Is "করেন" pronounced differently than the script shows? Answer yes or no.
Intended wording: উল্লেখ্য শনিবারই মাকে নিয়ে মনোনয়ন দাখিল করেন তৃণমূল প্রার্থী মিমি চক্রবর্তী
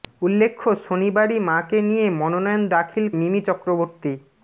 yes